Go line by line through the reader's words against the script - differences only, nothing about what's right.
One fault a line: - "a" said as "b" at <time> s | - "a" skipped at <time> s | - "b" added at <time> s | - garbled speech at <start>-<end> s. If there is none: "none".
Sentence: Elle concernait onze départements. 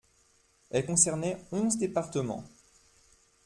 none